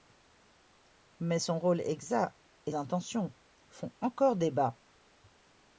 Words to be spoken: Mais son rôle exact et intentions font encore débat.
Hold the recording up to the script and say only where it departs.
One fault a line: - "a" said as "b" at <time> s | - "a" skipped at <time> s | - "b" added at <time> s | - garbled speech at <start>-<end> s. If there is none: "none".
none